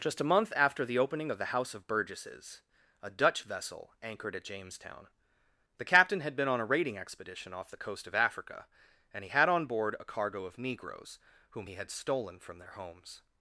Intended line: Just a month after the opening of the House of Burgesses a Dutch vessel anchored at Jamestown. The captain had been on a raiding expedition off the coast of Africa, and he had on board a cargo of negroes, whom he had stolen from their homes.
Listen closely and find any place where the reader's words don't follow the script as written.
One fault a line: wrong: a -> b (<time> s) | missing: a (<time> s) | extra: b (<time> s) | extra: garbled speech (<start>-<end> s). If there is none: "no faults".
no faults